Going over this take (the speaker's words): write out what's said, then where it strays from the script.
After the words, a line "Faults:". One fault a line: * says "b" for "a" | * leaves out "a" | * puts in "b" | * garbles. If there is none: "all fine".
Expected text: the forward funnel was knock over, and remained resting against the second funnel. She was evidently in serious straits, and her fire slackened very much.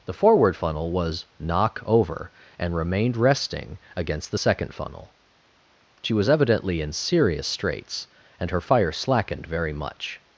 the forward funnel was knock over, and remained resting against the second funnel. She was evidently in serious straits, and her fire slackened very much.
Faults:
all fine